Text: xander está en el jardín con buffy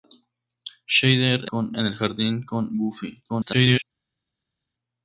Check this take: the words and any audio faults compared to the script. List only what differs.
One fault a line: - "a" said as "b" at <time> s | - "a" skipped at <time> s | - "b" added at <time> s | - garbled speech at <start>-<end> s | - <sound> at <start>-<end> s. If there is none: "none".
- "está" said as "con" at 1.4 s
- garbled speech at 3.3-3.8 s